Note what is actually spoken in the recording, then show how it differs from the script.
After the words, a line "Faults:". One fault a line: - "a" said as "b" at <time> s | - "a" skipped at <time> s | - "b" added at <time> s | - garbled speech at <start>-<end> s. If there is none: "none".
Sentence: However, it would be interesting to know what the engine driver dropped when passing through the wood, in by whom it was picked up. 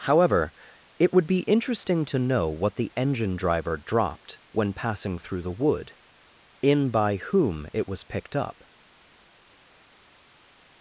However, it would be interesting to know what the engine driver dropped when passing through the wood, in by whom it was picked up.
Faults:
none